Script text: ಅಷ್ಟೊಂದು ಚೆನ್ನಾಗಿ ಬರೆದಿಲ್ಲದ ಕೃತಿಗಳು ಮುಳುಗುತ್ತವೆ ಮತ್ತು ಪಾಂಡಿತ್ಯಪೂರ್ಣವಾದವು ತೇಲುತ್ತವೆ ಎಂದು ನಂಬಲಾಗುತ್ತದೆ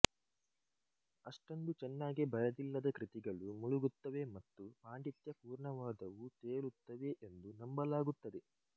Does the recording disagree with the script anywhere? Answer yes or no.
no